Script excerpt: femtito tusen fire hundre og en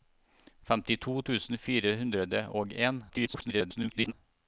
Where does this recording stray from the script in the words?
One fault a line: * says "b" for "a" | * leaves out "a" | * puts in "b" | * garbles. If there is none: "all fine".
* garbles